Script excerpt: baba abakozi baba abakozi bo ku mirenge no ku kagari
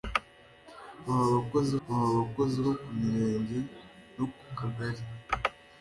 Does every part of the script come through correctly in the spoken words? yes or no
yes